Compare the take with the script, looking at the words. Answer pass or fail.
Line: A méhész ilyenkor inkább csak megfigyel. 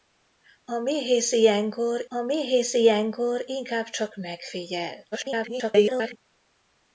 fail